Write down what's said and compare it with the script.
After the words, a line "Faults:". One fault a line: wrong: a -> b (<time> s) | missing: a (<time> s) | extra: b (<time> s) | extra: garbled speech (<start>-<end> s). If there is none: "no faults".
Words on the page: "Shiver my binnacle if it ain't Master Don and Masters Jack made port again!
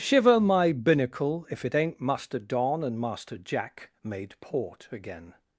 "Shiver my binnacle if it ain't Master Don and Master Jack made port again!
Faults:
wrong: Masters -> Master (3.0 s)